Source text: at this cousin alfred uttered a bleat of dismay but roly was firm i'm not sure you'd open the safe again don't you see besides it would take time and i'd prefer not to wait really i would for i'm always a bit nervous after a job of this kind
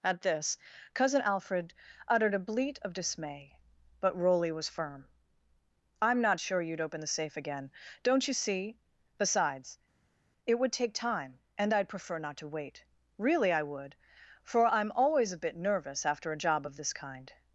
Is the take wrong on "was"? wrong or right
right